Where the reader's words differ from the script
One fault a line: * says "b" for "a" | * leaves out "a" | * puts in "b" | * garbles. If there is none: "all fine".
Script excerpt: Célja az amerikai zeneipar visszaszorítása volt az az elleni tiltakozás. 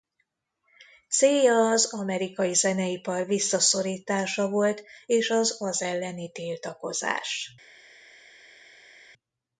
* puts in "és"